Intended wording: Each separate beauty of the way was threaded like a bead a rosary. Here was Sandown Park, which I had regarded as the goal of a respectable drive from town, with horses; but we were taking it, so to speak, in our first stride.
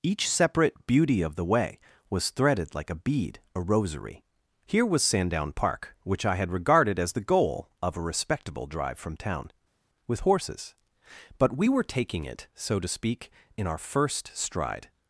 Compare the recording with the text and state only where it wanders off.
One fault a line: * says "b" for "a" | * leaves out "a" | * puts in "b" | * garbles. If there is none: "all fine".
all fine